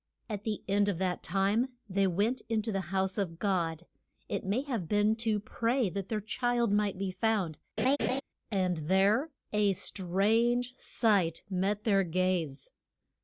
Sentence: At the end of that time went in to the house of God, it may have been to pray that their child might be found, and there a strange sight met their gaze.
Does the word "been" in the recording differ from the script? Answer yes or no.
no